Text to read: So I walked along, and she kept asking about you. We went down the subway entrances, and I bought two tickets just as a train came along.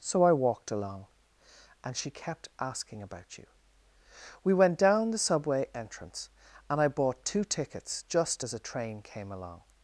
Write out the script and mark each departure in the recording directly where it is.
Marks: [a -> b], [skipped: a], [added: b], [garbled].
So I walked along, and she kept asking about you. We went down the subway [entrances, -> entrance] and I bought two tickets just as a train came along.